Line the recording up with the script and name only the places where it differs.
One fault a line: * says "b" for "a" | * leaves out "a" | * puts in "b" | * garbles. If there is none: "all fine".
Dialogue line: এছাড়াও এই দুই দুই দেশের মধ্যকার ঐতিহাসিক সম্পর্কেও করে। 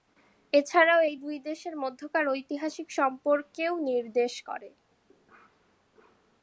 * leaves out "দুই"
* puts in "নির্দেশ"